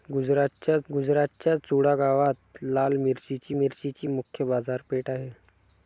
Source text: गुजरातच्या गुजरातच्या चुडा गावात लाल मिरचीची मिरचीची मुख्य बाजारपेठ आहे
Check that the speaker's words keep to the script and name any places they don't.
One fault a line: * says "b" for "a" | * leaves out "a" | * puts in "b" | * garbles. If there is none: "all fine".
all fine